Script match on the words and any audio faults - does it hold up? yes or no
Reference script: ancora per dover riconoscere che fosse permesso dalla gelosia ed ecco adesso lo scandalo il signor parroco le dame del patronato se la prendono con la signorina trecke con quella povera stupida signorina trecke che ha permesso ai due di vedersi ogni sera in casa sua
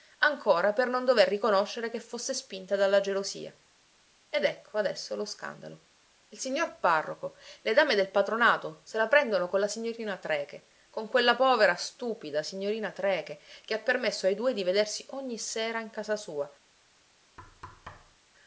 no